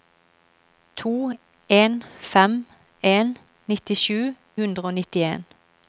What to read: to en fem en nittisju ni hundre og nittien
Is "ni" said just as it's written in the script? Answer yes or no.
no